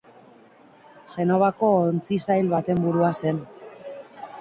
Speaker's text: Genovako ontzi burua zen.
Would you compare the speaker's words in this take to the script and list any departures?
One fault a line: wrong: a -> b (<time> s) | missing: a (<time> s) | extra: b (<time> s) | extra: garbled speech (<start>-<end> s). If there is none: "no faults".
extra: sail baten (2.3 s)